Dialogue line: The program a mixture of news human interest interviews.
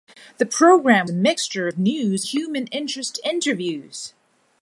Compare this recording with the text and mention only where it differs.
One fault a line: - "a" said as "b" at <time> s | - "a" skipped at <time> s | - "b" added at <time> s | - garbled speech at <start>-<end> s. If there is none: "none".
none